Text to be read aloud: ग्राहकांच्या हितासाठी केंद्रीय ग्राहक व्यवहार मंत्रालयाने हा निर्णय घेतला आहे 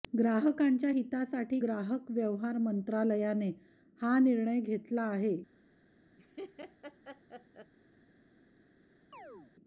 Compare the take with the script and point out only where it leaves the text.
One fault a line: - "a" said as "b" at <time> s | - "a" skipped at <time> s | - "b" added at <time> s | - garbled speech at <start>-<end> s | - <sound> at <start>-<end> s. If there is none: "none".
- "केंद्रीय" skipped at 1.6 s
- laugh at 6.2-7.7 s
- chirp at 9.1-9.5 s